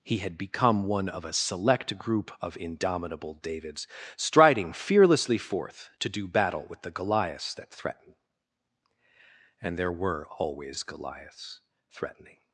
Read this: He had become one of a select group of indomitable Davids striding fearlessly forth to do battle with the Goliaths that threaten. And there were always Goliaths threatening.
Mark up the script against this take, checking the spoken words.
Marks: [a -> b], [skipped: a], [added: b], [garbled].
He had become one of a select group of indomitable Davids striding fearlessly forth to do battle with the Goliaths that threaten. And there were always Goliaths threatening.